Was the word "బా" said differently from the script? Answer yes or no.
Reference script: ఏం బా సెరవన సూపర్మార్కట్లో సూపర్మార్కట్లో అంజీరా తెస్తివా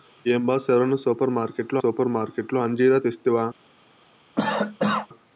no